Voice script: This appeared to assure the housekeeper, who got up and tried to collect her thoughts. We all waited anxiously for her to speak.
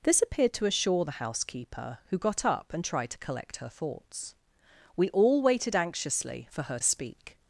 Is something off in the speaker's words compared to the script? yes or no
yes